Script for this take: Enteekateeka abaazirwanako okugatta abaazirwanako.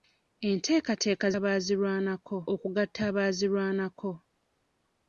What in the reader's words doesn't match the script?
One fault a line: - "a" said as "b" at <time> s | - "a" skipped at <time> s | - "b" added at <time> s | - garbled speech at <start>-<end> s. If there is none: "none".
none